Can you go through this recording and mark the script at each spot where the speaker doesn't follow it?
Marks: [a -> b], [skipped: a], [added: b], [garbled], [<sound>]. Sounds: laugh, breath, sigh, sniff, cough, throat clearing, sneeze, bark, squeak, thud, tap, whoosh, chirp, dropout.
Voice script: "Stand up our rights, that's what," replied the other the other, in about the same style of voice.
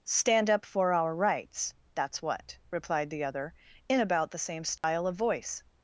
"Stand up [added: for] our rights, that's what," replied the other [skipped: the other,] in about the same style [dropout] of voice.